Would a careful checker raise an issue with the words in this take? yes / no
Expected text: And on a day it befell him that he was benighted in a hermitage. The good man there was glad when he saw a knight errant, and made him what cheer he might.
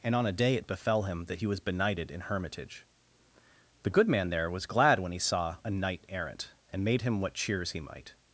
yes